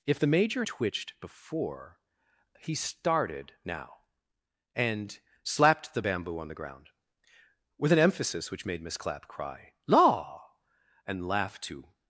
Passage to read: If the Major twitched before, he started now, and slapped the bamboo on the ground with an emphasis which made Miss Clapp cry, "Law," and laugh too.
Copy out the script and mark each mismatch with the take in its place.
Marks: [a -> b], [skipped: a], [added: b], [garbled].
If the Major twitched before, he started now, and slapped the bamboo on the ground with an emphasis which made Miss Clapp cry, "Law," and laugh too.